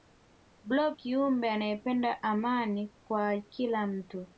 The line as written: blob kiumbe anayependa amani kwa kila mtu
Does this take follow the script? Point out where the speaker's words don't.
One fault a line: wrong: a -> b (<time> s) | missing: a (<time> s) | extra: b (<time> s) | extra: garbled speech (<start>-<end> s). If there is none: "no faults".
no faults